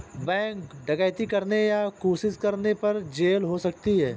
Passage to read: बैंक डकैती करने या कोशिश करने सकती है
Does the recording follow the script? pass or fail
fail